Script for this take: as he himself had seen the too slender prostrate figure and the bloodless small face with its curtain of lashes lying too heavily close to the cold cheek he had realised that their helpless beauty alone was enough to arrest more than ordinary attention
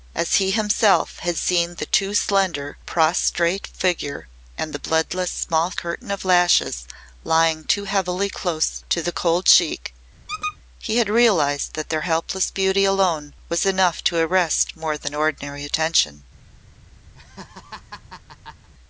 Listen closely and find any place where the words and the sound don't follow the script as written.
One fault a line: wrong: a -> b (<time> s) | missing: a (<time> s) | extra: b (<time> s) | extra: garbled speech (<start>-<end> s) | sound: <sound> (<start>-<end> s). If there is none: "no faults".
missing: face with its (5.7 s)
sound: squeak (10.3-10.6 s)
sound: laugh (17.1-18.7 s)